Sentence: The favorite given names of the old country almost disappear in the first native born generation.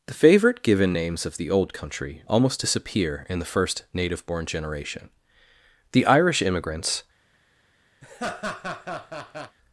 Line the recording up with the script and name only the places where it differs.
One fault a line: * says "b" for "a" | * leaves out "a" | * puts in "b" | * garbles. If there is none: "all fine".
* puts in "The Irish immigrants"